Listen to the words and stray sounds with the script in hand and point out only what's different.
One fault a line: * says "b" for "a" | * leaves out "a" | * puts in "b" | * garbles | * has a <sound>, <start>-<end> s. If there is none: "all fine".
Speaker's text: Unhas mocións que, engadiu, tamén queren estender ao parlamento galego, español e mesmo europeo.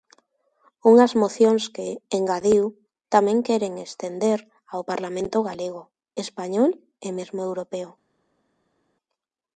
all fine